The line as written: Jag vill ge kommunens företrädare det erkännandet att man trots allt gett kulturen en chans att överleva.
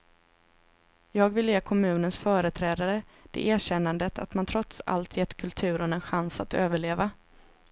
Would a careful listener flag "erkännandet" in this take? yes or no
no